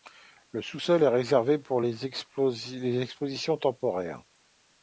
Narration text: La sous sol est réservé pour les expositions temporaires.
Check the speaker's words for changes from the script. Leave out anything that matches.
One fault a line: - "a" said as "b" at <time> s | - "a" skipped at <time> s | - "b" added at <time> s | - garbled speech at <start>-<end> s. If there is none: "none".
- "La" said as "Le" at 0.5 s